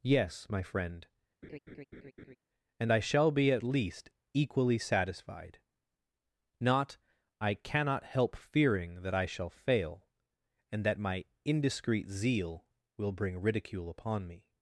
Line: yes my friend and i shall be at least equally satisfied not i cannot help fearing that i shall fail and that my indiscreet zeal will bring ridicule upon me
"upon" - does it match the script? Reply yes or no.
yes